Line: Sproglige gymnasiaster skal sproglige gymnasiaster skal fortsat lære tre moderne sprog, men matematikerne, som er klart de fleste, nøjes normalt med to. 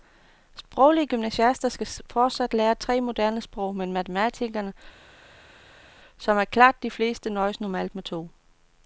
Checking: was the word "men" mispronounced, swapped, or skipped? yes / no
no